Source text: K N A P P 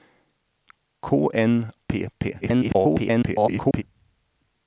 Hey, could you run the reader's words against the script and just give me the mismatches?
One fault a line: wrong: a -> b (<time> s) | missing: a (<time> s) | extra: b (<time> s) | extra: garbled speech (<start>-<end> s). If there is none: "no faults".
missing: A (1.7 s)
extra: garbled speech (2.4-3.8 s)